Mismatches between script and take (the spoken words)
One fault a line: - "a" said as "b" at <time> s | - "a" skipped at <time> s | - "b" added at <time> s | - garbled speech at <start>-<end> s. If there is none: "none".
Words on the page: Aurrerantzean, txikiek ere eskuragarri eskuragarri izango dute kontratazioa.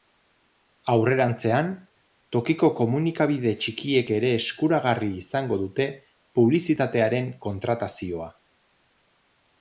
- "tokiko komunikabide" added at 2.3 s
- "eskuragarri" skipped at 5.1 s
- "publizitatearen" added at 6.4 s